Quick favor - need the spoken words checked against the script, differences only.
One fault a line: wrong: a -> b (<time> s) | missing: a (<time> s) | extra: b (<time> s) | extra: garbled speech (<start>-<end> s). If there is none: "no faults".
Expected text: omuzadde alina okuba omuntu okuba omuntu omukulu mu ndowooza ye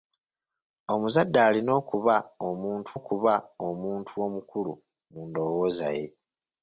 no faults